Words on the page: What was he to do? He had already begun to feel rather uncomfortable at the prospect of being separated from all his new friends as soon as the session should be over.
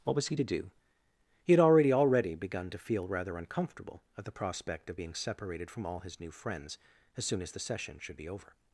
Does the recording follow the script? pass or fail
fail